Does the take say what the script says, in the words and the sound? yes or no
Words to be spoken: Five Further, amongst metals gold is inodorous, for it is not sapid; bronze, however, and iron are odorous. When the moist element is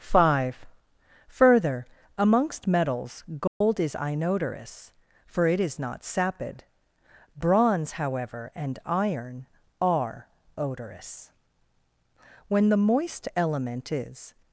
no